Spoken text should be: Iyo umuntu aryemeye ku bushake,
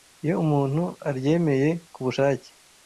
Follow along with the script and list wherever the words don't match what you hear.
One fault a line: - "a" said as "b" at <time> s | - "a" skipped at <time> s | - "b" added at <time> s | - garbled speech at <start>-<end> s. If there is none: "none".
none